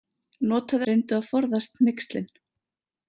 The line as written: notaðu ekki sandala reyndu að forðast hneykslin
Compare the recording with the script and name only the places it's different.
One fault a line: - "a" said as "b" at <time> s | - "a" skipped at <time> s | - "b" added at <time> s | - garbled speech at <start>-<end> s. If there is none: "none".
- "ekki sandala" skipped at 0.9 s